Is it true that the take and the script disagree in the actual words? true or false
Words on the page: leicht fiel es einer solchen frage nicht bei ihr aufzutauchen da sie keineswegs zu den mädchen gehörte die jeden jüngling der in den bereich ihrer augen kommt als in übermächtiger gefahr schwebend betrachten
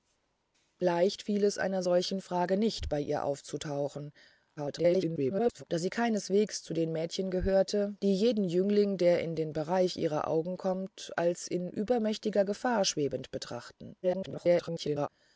true